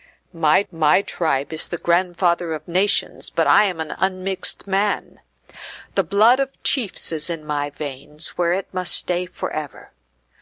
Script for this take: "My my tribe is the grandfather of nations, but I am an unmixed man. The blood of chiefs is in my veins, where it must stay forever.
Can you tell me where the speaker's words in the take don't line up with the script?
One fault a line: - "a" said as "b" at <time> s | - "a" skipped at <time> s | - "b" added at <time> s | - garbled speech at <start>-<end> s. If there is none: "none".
none